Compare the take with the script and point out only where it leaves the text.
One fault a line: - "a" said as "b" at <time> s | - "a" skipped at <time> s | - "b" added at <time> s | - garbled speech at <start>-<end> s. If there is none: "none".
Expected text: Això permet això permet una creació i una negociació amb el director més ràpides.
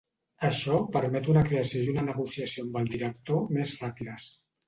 - "això permet" skipped at 1.3 s